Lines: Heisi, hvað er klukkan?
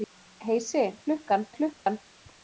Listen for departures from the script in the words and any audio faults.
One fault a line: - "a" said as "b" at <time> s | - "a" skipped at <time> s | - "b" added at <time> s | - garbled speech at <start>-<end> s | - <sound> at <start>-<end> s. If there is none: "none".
- "hvað" said as "klukkan" at 1.1 s
- dropout at 1.7-1.9 s